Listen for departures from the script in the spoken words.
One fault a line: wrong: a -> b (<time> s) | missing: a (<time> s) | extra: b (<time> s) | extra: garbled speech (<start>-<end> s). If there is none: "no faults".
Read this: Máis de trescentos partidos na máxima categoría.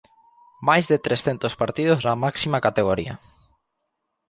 no faults